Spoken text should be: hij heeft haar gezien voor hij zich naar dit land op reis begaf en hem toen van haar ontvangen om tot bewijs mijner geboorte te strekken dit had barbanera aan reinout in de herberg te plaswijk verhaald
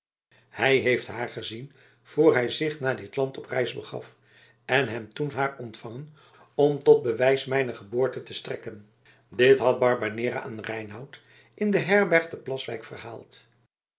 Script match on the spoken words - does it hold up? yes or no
no